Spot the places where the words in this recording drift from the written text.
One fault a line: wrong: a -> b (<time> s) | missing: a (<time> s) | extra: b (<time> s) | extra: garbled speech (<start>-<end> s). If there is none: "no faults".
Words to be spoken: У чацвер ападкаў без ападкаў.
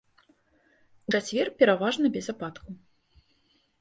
wrong: ападкаў -> пераважна (1.6 s)